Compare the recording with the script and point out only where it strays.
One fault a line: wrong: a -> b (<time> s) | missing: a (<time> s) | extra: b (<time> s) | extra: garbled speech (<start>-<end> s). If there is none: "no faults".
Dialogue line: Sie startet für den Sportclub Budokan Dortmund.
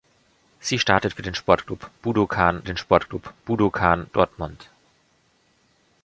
extra: den Sportclub Budokan (2.6 s)